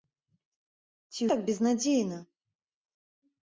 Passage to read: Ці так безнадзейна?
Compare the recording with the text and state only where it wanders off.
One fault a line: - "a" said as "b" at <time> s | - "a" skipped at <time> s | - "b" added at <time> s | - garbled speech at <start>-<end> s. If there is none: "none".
none